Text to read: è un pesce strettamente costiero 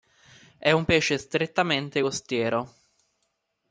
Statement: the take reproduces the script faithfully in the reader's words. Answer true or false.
true